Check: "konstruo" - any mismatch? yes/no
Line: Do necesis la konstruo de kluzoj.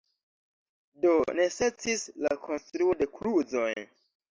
no